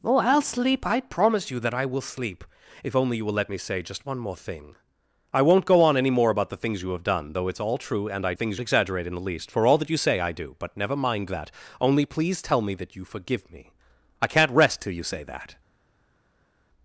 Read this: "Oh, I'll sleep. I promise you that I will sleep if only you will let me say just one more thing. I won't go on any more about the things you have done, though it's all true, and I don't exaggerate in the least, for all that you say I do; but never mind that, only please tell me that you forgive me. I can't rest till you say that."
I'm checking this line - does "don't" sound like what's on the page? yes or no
no